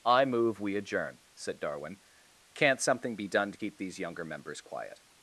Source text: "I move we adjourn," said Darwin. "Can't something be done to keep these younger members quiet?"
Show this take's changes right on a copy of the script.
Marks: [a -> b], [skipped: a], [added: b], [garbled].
"I move we adjourn," said Darwin. "Can't something be done to keep these younger members quiet?"